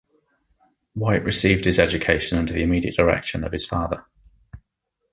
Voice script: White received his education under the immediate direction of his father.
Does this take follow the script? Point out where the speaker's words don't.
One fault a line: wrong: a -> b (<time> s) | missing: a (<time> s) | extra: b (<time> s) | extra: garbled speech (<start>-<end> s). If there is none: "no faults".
no faults